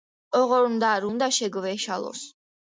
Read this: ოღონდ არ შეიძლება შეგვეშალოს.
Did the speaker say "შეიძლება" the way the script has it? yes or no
no